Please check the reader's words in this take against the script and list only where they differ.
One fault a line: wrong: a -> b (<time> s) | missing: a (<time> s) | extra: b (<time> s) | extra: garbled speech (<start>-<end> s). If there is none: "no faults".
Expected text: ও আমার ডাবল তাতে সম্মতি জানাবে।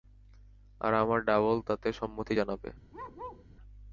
wrong: ও -> আর (0.8 s)